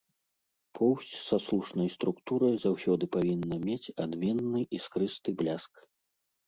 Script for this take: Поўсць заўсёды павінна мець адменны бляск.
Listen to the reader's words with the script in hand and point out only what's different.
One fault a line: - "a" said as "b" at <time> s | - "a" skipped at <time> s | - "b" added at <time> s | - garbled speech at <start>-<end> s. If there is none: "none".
- "са слушнай структурай" added at 1.3 s
- "іскрысты" added at 4.8 s